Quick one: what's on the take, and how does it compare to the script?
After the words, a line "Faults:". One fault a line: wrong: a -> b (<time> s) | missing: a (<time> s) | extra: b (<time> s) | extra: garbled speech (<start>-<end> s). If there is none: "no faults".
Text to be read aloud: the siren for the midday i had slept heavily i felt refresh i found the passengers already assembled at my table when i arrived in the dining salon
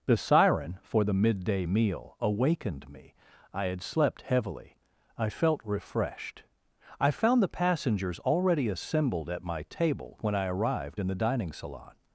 the siren for the midday meal awakened me i had slept heavily i felt refreshed i found the passengers already assembled at my table when i arrived in the dining salon
Faults:
extra: meal awakened me (1.6 s)
wrong: refresh -> refreshed (5.6 s)